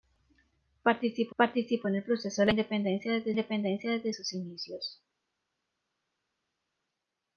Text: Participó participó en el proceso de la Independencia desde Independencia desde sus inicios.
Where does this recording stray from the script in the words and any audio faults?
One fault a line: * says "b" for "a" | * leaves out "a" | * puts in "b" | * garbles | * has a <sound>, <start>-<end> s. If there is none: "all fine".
all fine